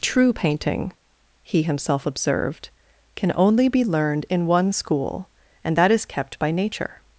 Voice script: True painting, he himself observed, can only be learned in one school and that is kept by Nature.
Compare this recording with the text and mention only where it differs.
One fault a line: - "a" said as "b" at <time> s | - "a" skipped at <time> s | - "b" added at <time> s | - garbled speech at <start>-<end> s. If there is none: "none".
none